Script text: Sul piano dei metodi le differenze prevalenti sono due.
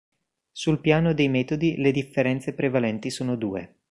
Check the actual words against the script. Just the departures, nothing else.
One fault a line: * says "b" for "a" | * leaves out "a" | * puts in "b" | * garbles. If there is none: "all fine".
all fine